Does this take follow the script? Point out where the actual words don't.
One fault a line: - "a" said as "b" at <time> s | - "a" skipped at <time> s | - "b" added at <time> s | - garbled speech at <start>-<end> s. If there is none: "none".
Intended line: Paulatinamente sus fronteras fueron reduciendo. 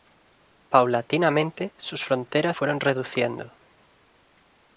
none